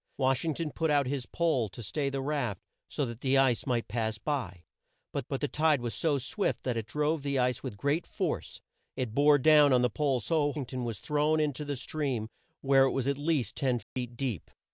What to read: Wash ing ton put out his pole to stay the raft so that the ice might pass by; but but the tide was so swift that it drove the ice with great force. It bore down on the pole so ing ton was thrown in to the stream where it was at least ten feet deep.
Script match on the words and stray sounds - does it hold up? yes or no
no